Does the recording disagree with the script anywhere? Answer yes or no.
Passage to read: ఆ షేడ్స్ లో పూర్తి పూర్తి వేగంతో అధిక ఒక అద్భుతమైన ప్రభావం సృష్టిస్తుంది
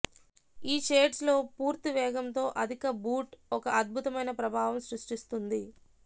yes